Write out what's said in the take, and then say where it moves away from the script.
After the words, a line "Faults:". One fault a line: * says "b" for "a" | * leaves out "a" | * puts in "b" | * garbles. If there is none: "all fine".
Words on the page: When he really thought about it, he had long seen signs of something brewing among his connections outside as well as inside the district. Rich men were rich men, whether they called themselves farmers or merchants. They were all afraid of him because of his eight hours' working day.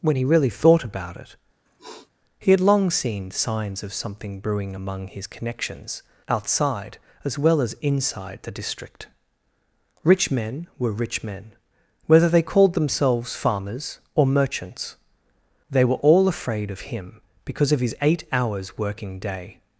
When he really thought about it, he had long seen signs of something brewing among his connections outside as well as inside the district. Rich men were rich men, whether they called themselves farmers or merchants. They were all afraid of him because of his eight hours' working day.
Faults:
all fine